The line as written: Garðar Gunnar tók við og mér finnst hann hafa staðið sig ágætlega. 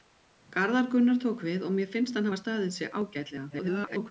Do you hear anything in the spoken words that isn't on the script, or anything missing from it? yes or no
yes